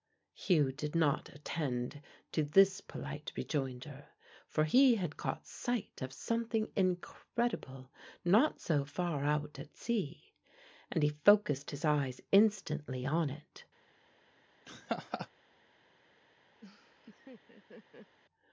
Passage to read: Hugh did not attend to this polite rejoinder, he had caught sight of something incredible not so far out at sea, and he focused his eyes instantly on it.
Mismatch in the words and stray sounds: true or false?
true